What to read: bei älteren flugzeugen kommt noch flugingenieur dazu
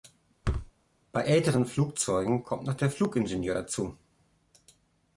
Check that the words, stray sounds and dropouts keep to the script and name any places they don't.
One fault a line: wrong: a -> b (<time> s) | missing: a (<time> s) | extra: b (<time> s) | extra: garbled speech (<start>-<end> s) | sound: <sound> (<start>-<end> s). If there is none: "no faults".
sound: thud (0.4-0.7 s)
extra: der (2.7 s)